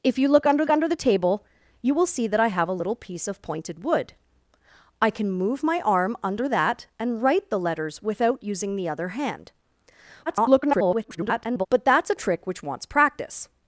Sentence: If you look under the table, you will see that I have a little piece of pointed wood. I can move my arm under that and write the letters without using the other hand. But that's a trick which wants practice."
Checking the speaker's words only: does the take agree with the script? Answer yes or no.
no